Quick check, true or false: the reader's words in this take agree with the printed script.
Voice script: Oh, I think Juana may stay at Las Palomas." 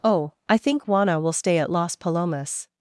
false